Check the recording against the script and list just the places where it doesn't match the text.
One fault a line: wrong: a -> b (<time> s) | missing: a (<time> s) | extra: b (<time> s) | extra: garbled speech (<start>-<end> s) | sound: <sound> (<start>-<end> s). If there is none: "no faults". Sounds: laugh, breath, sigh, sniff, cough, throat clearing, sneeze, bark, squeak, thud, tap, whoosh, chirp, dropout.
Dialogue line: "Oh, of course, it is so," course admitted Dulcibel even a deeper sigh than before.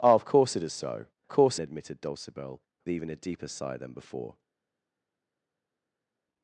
no faults